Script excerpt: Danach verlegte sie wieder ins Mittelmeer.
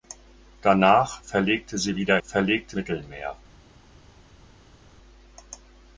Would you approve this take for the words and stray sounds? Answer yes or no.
no